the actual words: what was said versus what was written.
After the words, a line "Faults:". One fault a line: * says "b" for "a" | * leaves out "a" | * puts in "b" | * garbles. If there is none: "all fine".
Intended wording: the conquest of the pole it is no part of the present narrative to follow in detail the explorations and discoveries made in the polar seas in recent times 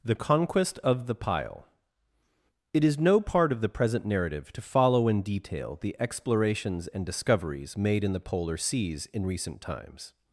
the conquest of the pile it is no part of the present narrative to follow in detail the explorations and discoveries made in the polar seas in recent times
Faults:
* says "pile" for "pole"